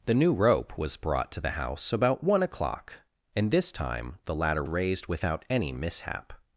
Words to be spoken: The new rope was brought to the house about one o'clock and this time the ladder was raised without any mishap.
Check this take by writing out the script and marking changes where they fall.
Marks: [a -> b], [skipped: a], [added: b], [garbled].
The new rope was brought to the house about one o'clock and this time the ladder [skipped: was] raised without any mishap.